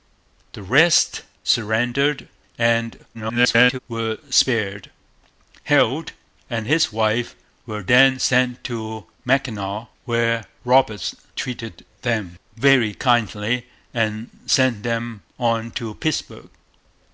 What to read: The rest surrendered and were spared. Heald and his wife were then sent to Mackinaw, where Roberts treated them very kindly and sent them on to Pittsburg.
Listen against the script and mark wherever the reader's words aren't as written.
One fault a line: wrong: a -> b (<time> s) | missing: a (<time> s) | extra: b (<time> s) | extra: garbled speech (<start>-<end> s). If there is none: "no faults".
extra: garbled speech (3.1-3.8 s)